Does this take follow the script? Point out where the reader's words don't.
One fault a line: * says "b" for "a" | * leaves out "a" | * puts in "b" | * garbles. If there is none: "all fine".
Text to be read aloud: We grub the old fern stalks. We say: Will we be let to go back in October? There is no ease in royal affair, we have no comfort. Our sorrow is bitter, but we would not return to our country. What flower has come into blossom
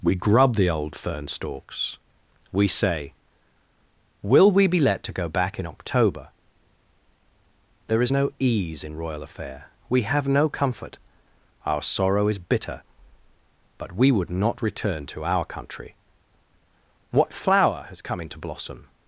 all fine